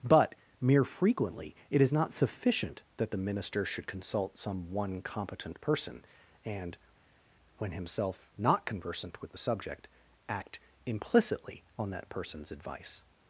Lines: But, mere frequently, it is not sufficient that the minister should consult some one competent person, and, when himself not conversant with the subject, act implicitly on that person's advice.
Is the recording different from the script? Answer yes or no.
no